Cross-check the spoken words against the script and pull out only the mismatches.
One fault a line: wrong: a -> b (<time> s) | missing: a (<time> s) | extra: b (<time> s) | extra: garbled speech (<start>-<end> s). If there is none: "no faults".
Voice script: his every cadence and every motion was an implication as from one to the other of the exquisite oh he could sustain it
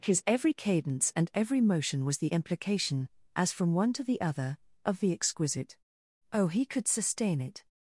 wrong: an -> the (2.2 s)